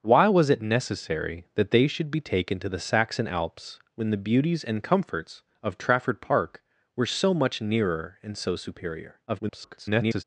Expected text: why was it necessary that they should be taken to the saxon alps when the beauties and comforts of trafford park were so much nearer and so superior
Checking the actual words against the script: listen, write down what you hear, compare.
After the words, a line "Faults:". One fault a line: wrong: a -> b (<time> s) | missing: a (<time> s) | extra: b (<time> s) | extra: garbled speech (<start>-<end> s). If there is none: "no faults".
why was it necessary that they should be taken to the saxon alps when the beauties and comforts of trafford park were so much nearer and so superior [garbled]
Faults:
extra: garbled speech (9.3-10.2 s)